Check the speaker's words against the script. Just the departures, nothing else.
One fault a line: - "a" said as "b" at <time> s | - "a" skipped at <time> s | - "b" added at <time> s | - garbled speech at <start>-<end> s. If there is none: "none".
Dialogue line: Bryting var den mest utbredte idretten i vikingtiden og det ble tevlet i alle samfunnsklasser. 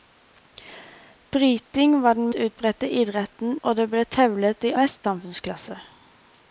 - "mest" skipped at 2.3 s
- "i vikingtiden" skipped at 3.6 s
- "alle" said as "mest" at 4.7 s